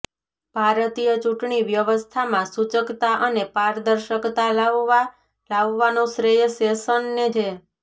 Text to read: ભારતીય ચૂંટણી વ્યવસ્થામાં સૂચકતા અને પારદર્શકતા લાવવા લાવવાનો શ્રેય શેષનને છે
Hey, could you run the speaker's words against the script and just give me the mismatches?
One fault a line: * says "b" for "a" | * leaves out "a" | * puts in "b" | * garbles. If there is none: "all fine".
all fine